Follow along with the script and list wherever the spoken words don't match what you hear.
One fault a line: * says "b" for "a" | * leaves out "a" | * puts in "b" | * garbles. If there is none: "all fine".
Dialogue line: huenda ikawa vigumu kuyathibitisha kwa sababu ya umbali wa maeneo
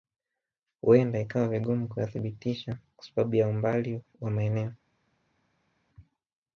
all fine